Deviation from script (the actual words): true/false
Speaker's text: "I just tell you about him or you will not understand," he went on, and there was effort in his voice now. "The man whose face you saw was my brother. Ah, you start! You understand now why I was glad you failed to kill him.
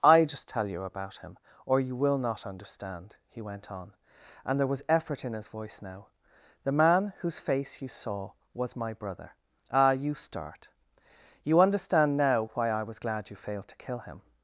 false